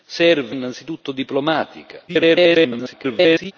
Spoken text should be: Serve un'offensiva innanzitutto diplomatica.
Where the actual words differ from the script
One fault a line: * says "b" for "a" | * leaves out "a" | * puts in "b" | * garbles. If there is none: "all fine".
* leaves out "un'offensiva"
* garbles